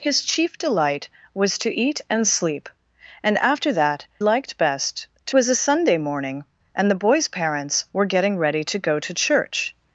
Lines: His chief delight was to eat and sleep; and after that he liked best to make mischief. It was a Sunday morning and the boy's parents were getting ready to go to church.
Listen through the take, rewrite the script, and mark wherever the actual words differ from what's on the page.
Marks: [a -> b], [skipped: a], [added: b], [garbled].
His chief delight was to eat and sleep; and after that [skipped: he] liked best to [skipped: make mischief. It] was a Sunday morning and the boy's parents were getting ready to go to church.